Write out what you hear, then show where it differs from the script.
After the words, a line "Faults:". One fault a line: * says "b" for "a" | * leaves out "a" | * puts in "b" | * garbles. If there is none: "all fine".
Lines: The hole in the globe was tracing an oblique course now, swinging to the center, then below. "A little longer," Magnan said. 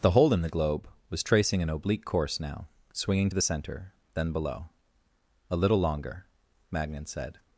The hole in the globe was tracing an oblique course now, swinging to the center, then below. "A little longer," Magnan said.
Faults:
all fine